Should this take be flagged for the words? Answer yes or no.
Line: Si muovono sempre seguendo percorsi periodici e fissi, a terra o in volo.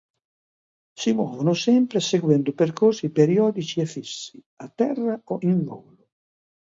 no